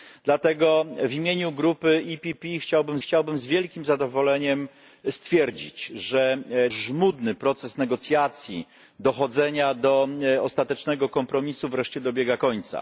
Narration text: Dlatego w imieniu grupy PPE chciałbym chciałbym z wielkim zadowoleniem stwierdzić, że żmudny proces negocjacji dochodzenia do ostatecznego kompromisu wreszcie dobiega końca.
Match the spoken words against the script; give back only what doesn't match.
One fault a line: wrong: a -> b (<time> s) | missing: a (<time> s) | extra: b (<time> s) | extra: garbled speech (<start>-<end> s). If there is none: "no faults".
no faults